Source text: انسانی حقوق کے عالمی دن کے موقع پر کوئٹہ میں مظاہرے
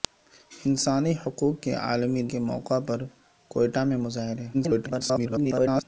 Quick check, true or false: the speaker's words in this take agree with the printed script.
false